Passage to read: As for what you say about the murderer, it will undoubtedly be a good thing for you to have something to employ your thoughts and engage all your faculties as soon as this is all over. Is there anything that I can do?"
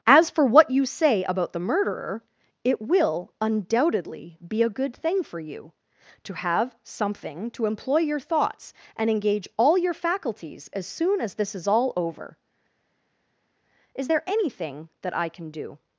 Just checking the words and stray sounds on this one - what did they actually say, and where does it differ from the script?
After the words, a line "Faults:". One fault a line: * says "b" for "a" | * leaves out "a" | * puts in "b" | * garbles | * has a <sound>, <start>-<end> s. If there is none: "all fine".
As for what you say about the murderer, it will undoubtedly be a good thing for you to have something to employ your thoughts and engage all your faculties as soon as this is all over. Is there anything that I can do?"
Faults:
all fine